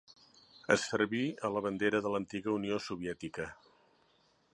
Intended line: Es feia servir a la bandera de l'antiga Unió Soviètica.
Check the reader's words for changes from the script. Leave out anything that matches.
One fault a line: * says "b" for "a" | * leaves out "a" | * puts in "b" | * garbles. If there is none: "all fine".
* leaves out "feia"